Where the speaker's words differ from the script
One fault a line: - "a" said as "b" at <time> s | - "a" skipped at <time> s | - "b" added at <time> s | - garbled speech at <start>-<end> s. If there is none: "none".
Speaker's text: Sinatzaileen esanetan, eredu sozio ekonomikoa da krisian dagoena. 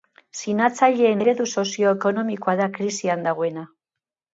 - "esanetan" skipped at 1.2 s